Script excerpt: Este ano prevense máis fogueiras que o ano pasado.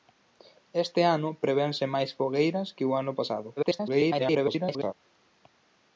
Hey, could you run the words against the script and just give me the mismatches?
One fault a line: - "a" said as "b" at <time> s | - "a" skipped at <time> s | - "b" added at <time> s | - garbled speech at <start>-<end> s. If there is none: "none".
- garbled speech at 3.6-4.9 s